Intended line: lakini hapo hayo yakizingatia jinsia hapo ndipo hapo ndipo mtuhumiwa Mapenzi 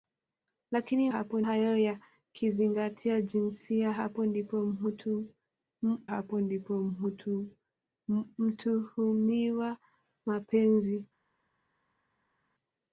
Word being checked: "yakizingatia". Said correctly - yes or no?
yes